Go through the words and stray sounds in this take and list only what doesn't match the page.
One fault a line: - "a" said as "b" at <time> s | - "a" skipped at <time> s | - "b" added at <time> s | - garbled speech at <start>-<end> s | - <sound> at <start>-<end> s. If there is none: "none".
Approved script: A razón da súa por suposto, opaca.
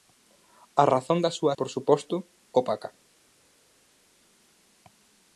none